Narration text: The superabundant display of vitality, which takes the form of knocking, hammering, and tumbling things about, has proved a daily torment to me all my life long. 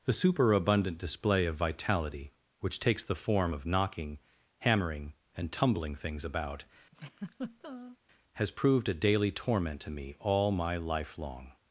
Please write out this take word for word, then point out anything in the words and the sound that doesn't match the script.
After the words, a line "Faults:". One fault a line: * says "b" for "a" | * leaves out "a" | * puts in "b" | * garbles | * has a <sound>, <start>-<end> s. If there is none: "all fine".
The superabundant display of vitality, which takes the form of knocking, hammering, and tumbling things about, has proved a daily torment to me all my life long.
Faults:
* has a laugh, 6.9-8.0 s